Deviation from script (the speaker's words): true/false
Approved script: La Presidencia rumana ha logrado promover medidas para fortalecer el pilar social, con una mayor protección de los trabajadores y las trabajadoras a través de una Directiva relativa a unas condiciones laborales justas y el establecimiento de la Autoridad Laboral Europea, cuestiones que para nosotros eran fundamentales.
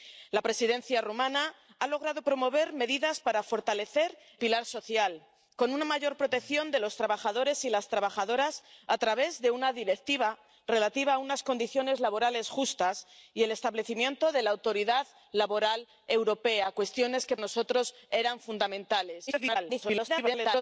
true